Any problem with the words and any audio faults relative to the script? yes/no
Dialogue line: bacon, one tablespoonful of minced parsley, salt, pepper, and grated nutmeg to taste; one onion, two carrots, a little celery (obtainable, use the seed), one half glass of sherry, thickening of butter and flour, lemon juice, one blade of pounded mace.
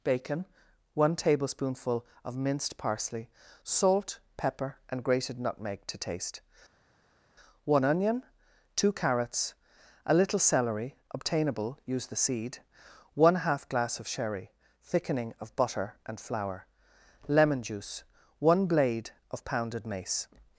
no